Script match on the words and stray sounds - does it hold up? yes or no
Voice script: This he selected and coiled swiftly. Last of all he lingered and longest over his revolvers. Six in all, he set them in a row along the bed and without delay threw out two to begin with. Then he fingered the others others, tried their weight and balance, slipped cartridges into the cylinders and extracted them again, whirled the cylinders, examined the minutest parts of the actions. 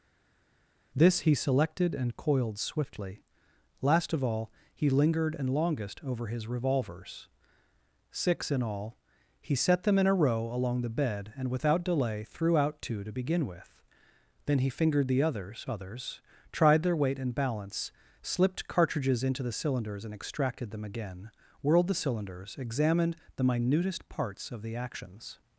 yes